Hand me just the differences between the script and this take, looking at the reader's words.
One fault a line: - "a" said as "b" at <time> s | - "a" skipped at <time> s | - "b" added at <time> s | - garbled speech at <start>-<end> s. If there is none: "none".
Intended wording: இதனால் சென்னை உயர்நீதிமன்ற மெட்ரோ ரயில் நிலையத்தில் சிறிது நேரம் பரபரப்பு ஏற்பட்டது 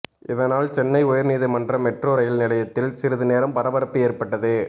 none